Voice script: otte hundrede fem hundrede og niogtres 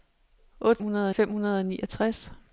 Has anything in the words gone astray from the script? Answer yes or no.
no